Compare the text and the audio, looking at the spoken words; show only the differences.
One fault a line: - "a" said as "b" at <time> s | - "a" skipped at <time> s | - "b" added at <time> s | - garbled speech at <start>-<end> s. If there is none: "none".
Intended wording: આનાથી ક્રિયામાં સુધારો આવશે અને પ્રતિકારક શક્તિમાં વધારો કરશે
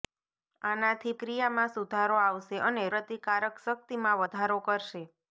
none